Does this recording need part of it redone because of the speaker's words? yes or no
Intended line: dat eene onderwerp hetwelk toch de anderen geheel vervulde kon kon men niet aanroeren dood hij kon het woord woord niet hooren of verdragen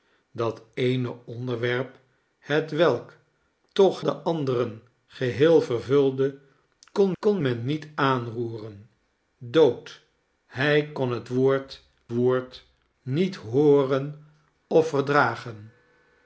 no